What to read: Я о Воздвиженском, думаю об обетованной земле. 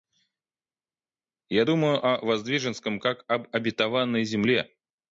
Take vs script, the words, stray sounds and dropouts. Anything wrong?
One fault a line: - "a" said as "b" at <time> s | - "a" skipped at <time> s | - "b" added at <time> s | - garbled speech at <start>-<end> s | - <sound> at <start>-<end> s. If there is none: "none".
- "думаю" added at 1.6 s
- "думаю" said as "как" at 3.0 s